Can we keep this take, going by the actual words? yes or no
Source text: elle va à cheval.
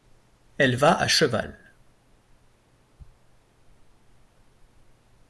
yes